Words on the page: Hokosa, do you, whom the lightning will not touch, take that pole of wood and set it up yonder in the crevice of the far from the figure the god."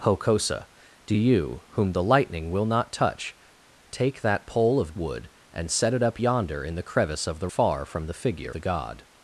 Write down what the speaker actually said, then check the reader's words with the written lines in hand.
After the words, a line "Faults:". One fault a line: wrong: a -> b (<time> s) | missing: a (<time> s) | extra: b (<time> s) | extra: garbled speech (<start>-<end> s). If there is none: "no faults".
Hokosa, do you, whom the lightning will not touch, take that pole of wood and set it up yonder in the crevice of the far from the figure the god."
Faults:
no faults